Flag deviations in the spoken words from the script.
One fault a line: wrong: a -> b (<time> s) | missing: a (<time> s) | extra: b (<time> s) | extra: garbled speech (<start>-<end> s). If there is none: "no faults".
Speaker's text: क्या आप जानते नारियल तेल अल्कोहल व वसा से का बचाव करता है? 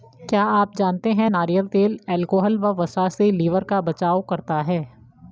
extra: है (1.1 s)
extra: लिवर (3.3 s)